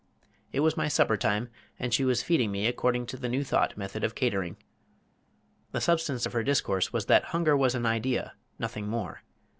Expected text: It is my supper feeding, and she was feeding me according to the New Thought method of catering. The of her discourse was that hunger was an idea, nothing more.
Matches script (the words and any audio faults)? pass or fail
fail